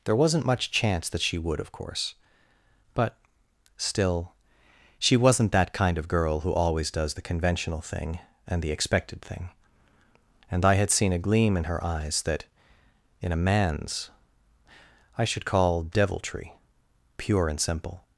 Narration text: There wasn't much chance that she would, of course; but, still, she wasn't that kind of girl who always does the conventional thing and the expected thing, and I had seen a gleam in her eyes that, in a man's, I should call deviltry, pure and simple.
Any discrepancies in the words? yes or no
no